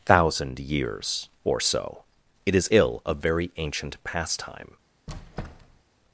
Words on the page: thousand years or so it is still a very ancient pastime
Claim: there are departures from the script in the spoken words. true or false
true